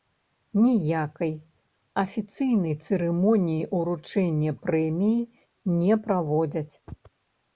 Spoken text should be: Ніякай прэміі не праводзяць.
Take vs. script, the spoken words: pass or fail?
fail